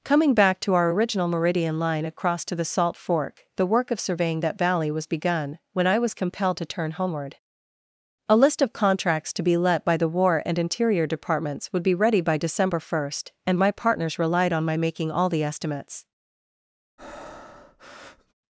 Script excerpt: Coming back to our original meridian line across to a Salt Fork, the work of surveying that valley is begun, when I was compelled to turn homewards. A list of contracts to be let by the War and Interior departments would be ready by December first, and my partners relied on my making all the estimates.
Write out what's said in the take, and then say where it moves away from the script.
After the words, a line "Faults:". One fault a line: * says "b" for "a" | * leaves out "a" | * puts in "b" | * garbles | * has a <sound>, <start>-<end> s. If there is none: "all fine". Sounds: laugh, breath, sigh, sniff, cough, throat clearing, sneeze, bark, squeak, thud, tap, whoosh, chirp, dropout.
Coming back to our original meridian line across to the Salt Fork, the work of surveying that valley was begun, when I was compelled to turn homeward. A list of contracts to be let by the War and Interior departments would be ready by December first, and my partners relied on my making all the estimates.
Faults:
* says "the" for "a"
* says "was" for "is"
* says "homeward" for "homewards"
* has a breath, 17.0-18.3 s